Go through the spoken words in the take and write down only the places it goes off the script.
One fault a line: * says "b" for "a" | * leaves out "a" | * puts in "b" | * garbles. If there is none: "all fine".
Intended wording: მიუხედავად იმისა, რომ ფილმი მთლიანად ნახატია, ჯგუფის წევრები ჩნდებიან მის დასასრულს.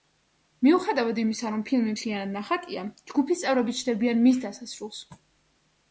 all fine